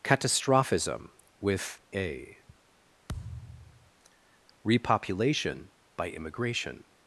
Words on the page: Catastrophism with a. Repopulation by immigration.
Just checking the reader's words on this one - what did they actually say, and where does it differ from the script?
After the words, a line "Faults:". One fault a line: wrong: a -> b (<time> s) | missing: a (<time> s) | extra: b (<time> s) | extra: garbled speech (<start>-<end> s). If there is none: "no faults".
Catastrophism with a. Repopulation by immigration.
Faults:
no faults